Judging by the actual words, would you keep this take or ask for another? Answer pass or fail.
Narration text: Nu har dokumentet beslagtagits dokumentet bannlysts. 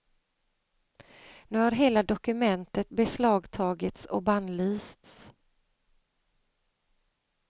fail